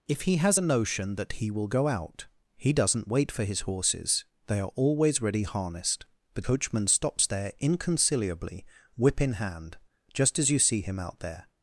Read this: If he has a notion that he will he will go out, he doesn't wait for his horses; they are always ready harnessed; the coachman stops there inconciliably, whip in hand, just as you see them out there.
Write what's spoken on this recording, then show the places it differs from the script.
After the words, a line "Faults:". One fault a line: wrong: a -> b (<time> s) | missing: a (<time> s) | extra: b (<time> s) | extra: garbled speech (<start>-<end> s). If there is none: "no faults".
If he has a notion that he will go out, he doesn't wait for his horses; they are always ready harnessed; the coachman stops there inconciliably, whip in hand, just as you see him out there.
Faults:
missing: he will (1.7 s)
wrong: them -> him (10.8 s)